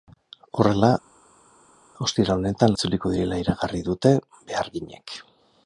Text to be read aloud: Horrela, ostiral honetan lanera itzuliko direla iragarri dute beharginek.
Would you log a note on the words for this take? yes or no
yes